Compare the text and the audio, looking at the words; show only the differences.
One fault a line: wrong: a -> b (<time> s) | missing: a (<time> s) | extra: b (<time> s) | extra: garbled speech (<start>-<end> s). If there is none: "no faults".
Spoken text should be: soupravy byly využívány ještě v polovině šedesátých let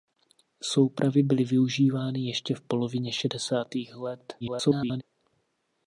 extra: garbled speech (4.4-5.0 s)